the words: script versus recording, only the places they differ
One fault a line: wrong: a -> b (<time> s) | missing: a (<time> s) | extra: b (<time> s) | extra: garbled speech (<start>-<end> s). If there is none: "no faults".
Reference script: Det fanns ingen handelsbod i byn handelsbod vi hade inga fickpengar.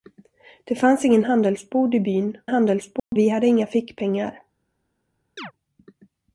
no faults